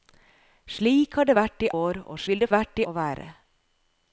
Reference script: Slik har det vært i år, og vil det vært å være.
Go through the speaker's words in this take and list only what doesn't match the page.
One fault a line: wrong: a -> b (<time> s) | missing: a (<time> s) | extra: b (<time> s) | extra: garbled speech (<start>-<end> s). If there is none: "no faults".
no faults